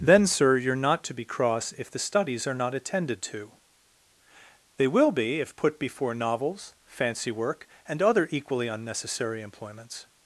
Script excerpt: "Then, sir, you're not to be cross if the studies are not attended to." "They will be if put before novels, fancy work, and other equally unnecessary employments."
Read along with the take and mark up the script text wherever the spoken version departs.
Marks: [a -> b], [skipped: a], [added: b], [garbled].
"Then, sir, you're not to be cross if the studies are not attended to." "They will be if put before novels, fancy work, and other equally unnecessary employments."